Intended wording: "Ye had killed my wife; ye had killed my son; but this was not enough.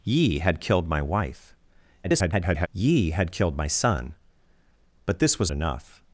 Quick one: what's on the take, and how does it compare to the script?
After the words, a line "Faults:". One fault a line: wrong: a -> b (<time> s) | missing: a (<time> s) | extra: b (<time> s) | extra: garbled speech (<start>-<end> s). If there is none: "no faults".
"Ye had killed my wife; [garbled] ye had killed my son; but this was enough.
Faults:
extra: garbled speech (2.0-2.7 s)
missing: not (5.5 s)